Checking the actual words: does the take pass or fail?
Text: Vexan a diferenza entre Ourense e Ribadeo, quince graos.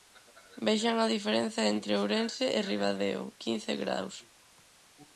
pass